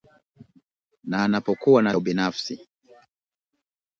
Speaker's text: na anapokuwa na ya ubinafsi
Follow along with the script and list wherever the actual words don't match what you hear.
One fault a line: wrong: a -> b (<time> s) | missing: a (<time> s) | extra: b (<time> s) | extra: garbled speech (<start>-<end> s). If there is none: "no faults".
no faults